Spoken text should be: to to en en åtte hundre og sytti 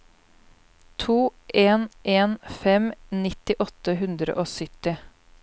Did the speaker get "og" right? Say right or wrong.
right